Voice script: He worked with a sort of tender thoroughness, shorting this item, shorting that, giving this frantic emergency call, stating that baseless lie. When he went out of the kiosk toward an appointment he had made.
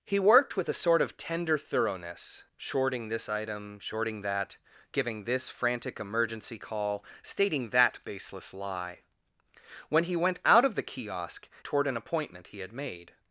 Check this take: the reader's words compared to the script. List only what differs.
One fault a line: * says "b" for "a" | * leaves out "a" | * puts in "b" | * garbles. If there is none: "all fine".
all fine